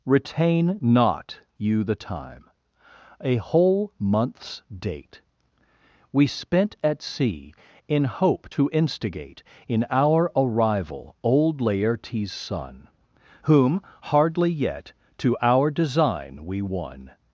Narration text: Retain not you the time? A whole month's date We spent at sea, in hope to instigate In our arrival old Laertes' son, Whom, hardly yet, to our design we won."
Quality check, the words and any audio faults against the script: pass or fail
pass